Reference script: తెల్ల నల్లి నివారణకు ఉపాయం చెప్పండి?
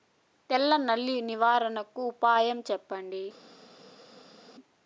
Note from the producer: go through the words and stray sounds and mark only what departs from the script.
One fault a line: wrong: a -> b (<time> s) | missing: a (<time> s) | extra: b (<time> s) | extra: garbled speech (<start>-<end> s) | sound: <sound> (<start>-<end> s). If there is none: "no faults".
no faults